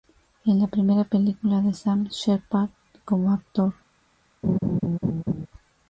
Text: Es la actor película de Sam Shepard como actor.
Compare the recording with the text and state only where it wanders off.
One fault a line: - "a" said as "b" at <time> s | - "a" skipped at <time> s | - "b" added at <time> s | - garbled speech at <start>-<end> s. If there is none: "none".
- "actor" said as "primera" at 0.7 s